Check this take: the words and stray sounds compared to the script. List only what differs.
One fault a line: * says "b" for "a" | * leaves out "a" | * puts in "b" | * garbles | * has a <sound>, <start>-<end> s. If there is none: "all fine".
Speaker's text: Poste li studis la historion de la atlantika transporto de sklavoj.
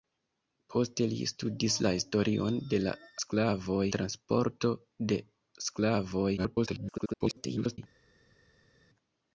* says "sklavoj" for "atlantika"
* garbles